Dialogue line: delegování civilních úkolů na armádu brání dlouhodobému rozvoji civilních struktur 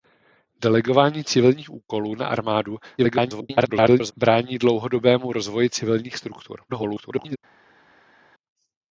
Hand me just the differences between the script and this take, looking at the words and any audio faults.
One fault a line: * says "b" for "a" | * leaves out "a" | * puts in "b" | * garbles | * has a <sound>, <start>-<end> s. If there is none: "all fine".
* garbles
* garbles